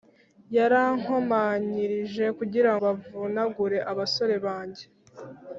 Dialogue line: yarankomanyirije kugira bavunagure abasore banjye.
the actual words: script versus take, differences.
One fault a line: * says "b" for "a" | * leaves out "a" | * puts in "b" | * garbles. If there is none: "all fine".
all fine